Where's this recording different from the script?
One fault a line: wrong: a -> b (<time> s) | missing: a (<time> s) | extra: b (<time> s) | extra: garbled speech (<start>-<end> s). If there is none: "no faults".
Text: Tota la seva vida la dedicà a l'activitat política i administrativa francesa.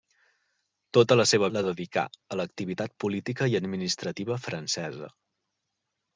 missing: vida (1.5 s)